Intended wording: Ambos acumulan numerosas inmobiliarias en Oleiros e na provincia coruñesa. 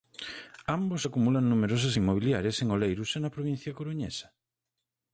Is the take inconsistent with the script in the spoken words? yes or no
no